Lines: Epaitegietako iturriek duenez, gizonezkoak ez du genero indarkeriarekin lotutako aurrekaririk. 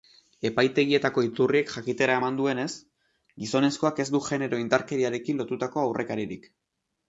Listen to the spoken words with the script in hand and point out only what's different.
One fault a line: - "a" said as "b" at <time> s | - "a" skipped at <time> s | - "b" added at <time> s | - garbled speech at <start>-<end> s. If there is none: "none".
- "jakitera eman" added at 1.7 s